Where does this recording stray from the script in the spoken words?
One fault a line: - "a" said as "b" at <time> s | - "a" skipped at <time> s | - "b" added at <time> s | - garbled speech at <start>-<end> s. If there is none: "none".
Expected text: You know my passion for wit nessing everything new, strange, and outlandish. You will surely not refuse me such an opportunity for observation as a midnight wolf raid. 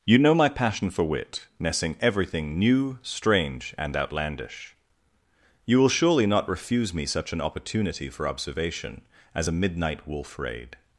none